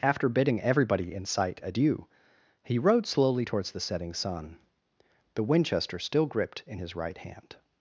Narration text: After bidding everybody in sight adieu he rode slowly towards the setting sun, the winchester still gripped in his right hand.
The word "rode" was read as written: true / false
true